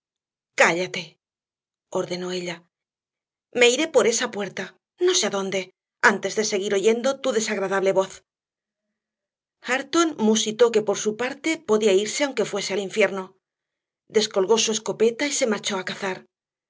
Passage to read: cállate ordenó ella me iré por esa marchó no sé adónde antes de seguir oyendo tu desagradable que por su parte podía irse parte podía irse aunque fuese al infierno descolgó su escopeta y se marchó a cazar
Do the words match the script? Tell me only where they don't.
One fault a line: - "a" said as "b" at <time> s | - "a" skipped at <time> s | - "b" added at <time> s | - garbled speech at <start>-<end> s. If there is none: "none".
- "marchó" said as "puerta" at 4.3 s
- "voz hareton musitó" added at 8.0 s
- "parte podía irse" skipped at 12.2 s